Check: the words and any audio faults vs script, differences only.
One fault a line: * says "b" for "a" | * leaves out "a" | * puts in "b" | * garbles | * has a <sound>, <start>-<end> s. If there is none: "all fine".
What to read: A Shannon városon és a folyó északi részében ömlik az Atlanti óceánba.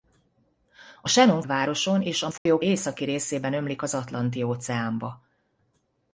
* has a dropout, 2.4-2.5 s